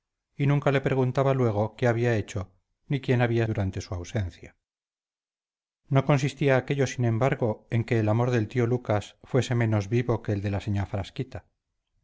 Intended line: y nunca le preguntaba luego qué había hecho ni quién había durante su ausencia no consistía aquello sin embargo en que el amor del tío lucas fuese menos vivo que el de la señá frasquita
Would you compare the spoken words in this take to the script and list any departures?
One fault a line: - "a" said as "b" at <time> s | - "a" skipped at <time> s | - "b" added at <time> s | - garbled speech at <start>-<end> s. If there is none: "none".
none